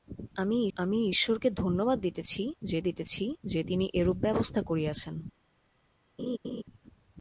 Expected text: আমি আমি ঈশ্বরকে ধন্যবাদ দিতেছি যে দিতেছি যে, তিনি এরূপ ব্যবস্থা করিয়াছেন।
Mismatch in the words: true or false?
false